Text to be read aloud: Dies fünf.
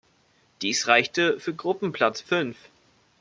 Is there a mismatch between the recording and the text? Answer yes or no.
yes